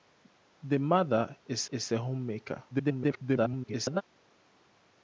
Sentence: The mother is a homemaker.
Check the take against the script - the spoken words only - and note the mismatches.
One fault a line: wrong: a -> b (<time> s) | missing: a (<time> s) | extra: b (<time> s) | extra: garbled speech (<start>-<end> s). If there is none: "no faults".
extra: is (1.7 s)
extra: garbled speech (2.7-4.0 s)